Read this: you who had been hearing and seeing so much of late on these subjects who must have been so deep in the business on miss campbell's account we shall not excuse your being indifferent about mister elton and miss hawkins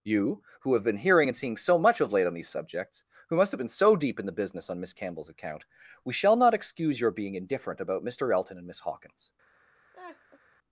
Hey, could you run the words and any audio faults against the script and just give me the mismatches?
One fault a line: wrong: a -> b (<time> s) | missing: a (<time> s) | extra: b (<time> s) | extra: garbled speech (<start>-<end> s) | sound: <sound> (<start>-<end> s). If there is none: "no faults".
wrong: had -> have (0.7 s)
sound: laugh (9.9-10.4 s)